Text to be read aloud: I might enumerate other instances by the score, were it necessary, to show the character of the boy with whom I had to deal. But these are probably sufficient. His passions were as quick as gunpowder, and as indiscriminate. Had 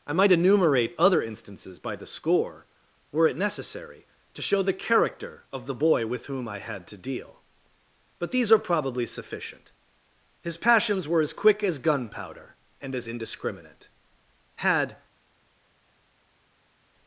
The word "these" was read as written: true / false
true